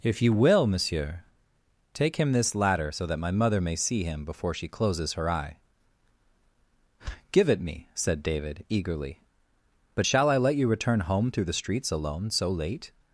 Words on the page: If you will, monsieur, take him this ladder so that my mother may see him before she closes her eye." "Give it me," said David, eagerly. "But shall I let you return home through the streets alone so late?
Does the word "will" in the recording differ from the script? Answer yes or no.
no